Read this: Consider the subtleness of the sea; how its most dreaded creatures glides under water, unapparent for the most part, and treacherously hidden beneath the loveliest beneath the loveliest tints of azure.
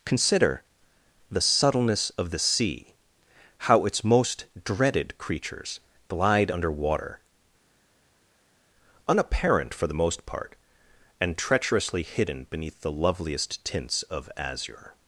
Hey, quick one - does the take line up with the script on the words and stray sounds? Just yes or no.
no